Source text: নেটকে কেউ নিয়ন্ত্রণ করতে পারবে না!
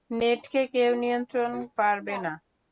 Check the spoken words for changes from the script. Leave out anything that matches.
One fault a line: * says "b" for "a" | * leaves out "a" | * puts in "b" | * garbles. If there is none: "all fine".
* leaves out "করতে"